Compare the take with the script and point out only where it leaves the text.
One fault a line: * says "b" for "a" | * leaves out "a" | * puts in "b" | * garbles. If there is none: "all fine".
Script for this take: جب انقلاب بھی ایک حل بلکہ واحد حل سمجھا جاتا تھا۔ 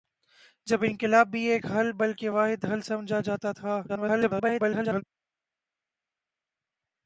* garbles